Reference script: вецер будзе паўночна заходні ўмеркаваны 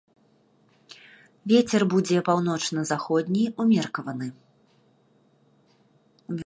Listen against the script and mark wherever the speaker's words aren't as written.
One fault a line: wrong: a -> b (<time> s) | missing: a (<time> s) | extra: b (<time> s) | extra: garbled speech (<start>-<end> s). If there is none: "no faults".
no faults